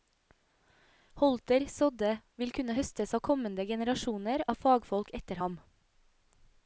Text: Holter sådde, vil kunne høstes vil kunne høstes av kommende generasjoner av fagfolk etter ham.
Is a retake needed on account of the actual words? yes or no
yes